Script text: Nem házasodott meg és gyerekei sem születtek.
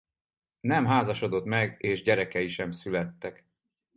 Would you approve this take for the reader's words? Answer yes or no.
yes